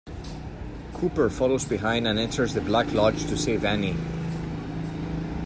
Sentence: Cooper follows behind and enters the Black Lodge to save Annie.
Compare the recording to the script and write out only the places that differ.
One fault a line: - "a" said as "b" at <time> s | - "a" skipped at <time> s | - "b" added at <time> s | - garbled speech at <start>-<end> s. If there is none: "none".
none